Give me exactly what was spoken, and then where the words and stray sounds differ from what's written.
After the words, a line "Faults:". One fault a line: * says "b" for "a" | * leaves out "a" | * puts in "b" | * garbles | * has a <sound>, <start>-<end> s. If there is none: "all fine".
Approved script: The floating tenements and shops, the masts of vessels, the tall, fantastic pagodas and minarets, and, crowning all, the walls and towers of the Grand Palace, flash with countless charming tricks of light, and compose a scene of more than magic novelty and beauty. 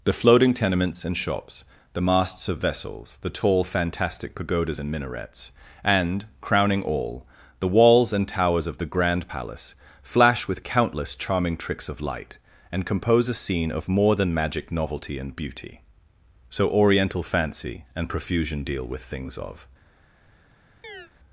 The floating tenements and shops, the masts of vessels, the tall, fantastic pagodas and minarets, and, crowning all, the walls and towers of the Grand Palace, flash with countless charming tricks of light, and compose a scene of more than magic novelty and beauty. So oriental fancy and profusion deal with things of
Faults:
* puts in "So oriental fancy and profusion deal with things of"
* has a chirp, 20.8-21.1 s